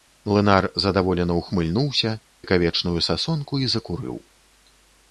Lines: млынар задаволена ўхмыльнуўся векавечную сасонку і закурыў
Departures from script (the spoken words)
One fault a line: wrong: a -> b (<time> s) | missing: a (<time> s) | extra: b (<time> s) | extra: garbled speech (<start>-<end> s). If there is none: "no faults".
no faults